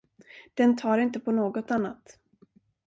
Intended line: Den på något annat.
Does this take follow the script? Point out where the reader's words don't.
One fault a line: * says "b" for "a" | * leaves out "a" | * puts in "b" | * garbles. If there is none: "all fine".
* puts in "tar inte"